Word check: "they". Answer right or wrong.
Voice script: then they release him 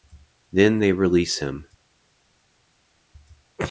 right